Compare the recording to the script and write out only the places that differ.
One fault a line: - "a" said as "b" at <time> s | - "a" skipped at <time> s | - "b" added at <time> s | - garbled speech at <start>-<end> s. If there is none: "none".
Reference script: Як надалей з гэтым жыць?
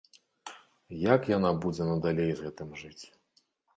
- "яна будзе" added at 1.4 s